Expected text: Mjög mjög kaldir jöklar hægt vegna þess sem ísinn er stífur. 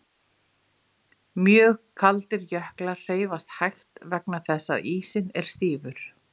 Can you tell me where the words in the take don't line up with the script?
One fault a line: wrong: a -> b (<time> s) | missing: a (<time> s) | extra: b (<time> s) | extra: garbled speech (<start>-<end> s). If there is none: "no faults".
missing: mjög (1.8 s)
extra: hreyfast (3.0 s)
wrong: sem -> að (4.8 s)